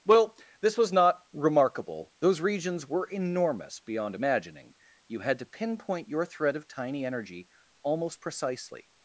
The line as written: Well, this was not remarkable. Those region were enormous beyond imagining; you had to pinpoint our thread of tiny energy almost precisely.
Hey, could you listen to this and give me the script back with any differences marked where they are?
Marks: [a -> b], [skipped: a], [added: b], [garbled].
Well, this was not remarkable. Those [region -> regions] were enormous beyond imagining; you had to pinpoint [our -> your] thread of tiny energy almost precisely.